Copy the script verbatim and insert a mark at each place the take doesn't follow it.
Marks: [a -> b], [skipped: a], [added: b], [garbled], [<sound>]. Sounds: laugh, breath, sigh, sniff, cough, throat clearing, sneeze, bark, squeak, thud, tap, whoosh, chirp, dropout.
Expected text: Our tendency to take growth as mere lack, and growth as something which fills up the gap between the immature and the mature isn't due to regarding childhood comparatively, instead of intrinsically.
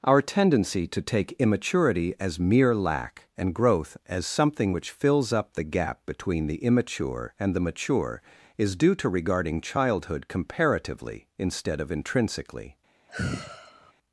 Our tendency to take [growth -> immaturity] as mere lack, and growth as something which fills up the gap between the immature and the mature [isn't -> is] due to regarding childhood comparatively, instead of intrinsically. [sigh]